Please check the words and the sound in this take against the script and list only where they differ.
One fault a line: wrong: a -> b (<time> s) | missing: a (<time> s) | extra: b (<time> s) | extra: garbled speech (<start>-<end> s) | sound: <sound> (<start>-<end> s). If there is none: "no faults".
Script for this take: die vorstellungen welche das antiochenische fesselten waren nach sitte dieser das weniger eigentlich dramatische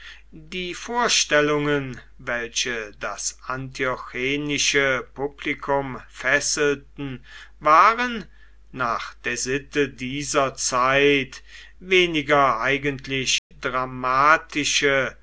extra: publikum (5.1 s)
extra: der (9.2 s)
wrong: das -> zeit (10.6 s)
sound: dropout (13.4-13.5 s)